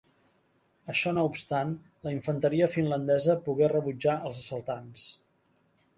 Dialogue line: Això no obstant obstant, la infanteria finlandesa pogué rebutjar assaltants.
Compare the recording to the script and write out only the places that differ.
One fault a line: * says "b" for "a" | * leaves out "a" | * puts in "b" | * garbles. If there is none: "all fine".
* leaves out "obstant"
* puts in "els"